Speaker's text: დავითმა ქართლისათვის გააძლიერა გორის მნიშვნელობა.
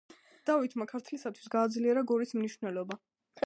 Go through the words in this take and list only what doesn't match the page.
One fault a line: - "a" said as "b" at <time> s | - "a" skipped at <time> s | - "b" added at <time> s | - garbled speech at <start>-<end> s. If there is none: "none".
none